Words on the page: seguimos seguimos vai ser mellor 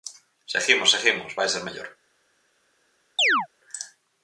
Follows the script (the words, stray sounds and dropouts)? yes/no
no